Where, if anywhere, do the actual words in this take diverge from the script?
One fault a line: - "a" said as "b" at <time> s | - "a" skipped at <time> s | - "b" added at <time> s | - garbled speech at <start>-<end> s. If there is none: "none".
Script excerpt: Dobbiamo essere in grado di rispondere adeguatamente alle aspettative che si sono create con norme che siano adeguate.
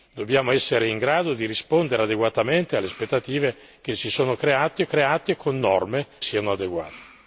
- "create" added at 4.9 s
- "che" skipped at 6.1 s